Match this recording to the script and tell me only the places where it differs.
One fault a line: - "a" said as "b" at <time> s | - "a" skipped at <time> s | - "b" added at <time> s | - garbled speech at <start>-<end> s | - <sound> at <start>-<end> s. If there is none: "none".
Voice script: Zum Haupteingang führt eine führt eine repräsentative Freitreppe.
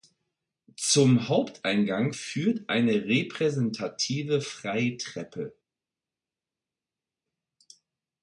- "führt eine" skipped at 3.0 s